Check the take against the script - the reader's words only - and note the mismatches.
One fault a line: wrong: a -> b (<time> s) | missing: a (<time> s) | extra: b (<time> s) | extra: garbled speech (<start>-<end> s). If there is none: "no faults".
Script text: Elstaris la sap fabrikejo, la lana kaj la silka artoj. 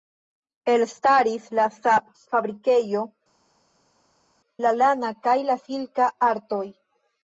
no faults